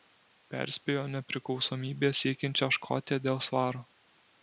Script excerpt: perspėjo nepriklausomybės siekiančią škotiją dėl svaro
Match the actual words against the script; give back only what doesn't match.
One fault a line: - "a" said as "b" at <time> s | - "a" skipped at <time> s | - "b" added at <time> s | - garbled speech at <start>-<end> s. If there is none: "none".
none